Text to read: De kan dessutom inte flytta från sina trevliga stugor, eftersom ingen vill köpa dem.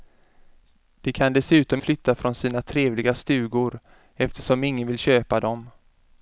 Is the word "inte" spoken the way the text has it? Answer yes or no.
no